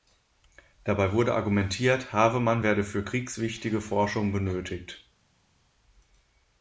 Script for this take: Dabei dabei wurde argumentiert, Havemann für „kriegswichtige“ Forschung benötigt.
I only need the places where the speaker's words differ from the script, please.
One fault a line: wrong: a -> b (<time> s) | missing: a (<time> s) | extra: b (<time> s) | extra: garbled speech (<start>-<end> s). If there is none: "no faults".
missing: dabei (1.1 s)
extra: werde (2.6 s)